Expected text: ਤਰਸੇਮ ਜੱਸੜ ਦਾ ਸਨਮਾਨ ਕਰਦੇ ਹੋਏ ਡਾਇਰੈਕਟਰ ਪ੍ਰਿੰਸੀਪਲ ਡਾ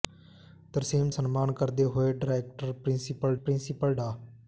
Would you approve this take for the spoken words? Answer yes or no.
no